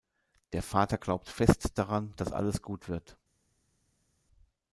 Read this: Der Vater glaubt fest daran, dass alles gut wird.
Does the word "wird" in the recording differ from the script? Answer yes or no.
no